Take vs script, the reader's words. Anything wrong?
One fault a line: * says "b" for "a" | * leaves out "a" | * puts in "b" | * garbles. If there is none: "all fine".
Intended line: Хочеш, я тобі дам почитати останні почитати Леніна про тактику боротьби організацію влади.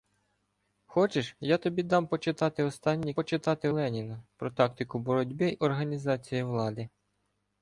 all fine